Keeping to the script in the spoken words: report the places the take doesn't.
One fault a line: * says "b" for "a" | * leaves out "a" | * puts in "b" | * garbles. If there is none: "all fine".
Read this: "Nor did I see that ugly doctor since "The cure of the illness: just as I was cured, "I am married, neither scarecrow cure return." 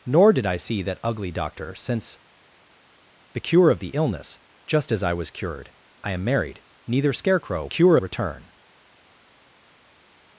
all fine